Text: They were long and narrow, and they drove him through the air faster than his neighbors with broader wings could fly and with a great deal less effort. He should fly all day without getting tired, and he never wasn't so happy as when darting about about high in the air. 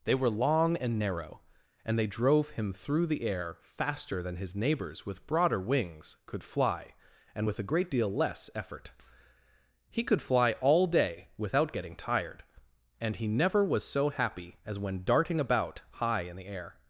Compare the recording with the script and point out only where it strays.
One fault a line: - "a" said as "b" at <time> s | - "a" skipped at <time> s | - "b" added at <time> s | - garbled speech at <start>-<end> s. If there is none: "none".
- "should" said as "could" at 10.0 s
- "wasn't" said as "was" at 13.6 s
- "about" skipped at 15.8 s